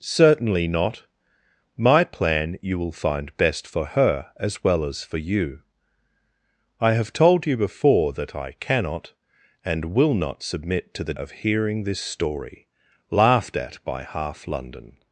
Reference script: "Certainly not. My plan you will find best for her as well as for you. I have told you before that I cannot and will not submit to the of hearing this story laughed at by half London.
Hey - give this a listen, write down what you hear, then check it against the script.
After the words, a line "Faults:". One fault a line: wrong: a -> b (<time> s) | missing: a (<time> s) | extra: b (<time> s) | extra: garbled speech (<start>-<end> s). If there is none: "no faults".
"Certainly not. My plan you will find best for her as well as for you. I have told you before that I cannot and will not submit to the of hearing this story laughed at by half London.
Faults:
no faults